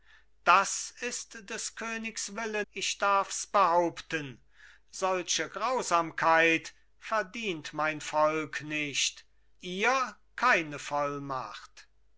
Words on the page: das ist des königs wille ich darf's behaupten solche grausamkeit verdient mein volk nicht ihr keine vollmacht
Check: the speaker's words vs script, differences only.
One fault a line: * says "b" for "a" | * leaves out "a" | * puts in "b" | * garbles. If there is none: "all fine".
all fine